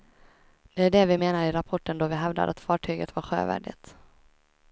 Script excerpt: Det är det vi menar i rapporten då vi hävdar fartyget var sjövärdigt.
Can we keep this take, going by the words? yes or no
no